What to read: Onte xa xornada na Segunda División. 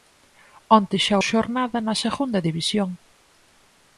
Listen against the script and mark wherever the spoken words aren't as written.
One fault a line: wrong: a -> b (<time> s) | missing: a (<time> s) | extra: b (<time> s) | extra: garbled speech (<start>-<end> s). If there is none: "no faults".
no faults